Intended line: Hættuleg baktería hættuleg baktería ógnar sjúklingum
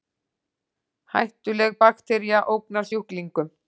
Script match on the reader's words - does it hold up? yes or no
no